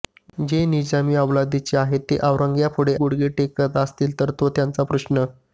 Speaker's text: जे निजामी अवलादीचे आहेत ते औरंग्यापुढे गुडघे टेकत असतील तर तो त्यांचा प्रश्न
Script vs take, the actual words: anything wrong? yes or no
no